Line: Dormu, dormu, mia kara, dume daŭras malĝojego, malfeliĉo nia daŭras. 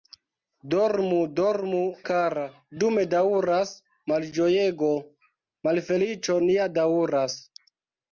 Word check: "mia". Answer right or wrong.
wrong